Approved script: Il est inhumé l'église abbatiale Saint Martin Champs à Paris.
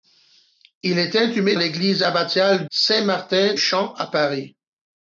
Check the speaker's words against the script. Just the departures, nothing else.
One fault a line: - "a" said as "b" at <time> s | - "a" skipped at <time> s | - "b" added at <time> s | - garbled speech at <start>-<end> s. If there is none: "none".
none